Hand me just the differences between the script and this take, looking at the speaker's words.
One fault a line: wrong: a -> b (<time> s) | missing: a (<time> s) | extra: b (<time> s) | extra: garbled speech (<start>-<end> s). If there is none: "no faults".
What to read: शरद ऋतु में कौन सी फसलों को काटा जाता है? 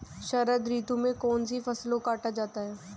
missing: को (2.0 s)